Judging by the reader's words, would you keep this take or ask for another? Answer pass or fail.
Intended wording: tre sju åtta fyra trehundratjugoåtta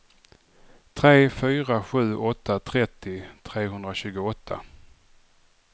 fail